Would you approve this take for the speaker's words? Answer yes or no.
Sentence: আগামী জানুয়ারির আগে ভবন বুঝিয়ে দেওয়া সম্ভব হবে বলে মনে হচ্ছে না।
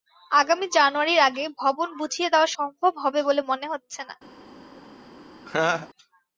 yes